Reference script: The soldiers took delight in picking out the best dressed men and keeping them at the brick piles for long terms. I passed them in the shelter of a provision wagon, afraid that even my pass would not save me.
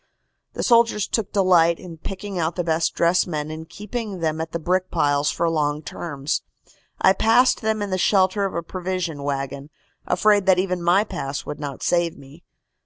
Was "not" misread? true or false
false